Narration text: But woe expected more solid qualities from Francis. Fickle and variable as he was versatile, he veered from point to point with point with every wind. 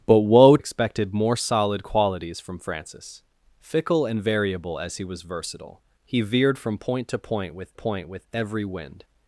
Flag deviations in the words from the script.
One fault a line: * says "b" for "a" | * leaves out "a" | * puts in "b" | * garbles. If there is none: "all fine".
all fine